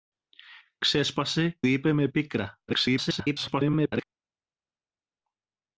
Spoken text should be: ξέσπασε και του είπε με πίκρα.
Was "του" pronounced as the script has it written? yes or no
no